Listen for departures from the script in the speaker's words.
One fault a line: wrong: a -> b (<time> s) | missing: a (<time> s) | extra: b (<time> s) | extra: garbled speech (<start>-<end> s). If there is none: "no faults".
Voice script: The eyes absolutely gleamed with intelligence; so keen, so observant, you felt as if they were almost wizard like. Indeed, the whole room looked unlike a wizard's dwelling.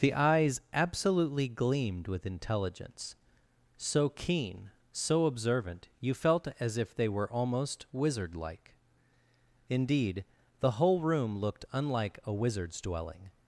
no faults